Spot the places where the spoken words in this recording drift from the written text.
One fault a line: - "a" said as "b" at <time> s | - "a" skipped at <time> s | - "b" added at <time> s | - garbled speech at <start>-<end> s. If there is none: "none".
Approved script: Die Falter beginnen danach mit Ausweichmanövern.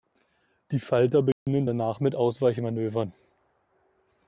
none